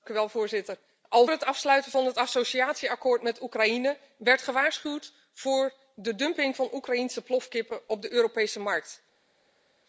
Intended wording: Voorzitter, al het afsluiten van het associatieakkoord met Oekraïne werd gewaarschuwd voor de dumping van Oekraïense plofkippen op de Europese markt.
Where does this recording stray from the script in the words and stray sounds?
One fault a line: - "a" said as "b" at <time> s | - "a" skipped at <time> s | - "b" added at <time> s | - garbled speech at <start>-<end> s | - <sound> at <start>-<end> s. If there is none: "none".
none